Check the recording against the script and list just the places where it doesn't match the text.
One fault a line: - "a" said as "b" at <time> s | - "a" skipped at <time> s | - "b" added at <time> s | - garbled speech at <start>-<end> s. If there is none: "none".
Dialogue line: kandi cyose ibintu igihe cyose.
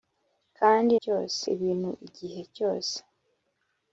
none